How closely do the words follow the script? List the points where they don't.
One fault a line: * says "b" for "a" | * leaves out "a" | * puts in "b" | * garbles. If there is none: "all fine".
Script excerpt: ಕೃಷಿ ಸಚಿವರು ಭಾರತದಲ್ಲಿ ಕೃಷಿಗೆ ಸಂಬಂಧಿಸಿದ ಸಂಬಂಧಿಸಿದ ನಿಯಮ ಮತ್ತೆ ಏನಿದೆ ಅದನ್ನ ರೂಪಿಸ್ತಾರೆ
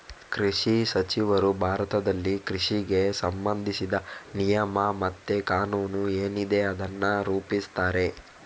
* leaves out "ಸಂಬಂಧಿಸಿದ"
* puts in "ಕಾನೂನು"